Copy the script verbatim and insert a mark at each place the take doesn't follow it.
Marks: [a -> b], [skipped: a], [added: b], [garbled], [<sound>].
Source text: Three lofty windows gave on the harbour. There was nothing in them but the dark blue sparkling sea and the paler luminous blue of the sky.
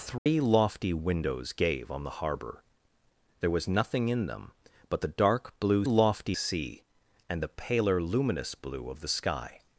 Three [dropout] lofty windows gave on the harbour. There was nothing in them but the dark blue [sparkling -> lofty] sea and the paler luminous blue of the sky.